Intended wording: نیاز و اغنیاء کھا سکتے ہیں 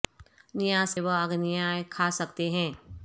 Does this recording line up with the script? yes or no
yes